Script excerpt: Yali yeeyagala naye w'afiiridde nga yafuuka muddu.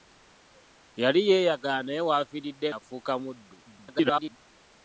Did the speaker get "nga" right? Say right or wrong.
wrong